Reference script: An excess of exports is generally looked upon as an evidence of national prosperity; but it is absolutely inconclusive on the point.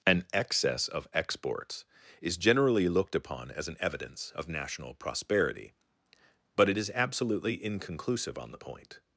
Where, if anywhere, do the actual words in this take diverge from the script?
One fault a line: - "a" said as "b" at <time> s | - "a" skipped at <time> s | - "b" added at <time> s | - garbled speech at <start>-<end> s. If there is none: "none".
none